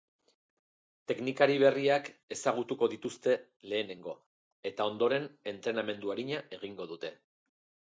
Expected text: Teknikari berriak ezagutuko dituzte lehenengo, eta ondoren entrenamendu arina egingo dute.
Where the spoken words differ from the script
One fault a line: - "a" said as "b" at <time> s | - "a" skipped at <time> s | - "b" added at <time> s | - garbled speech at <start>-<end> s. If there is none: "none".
none